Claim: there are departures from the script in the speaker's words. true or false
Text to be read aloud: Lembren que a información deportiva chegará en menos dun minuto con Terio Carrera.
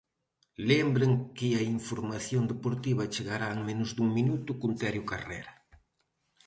false